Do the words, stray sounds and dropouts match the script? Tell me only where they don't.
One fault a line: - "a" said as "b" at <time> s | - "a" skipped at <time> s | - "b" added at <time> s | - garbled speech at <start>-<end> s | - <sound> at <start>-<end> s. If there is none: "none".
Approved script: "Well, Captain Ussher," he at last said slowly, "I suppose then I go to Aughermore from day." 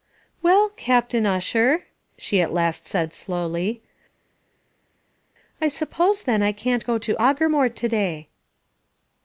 - "he" said as "she" at 2.2 s
- "can't" added at 6.5 s
- "from" said as "to" at 7.7 s